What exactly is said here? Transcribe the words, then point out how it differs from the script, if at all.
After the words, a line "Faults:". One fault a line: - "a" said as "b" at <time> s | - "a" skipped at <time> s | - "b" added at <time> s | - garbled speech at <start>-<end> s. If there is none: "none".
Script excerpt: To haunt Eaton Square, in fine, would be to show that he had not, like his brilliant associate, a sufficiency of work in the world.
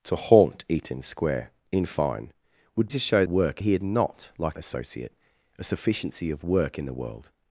To haunt Eaton Square, in fine, would to show work he had not, like associate, a sufficiency of work in the world.
Faults:
- "be" skipped at 2.9 s
- "that" said as "work" at 3.3 s
- "his brilliant" skipped at 4.6 s